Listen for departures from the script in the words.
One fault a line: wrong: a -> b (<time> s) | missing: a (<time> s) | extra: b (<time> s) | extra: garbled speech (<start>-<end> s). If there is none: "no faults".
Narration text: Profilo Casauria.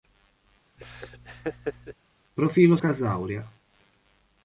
no faults